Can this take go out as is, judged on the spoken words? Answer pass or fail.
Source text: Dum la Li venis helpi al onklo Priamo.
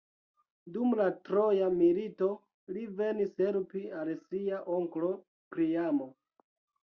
fail